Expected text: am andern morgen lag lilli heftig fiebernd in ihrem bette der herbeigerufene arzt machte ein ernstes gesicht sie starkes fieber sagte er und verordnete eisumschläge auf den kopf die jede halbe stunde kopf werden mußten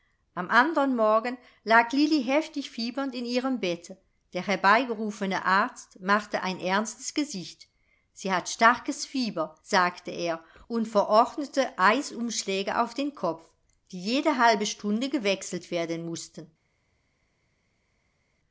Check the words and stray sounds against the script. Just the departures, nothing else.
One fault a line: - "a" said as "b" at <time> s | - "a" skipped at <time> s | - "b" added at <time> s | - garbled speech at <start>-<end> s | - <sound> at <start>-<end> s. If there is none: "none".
- "hat" added at 8.3 s
- "kopf" said as "gewechselt" at 15.1 s